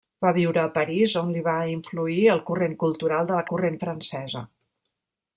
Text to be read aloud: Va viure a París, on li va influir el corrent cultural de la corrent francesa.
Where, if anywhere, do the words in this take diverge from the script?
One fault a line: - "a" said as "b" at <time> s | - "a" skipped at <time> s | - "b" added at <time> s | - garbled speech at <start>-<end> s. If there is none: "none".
none